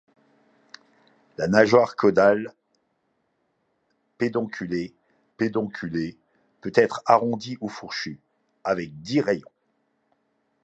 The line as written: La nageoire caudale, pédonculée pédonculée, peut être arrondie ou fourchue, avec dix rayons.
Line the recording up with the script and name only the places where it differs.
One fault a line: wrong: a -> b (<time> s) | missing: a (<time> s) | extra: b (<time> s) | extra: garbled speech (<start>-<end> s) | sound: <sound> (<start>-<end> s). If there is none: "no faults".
no faults